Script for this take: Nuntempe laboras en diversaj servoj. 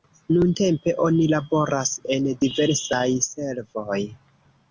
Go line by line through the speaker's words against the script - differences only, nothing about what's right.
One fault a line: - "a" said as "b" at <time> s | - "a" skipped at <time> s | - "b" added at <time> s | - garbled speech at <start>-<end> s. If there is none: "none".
- "oni" added at 1.1 s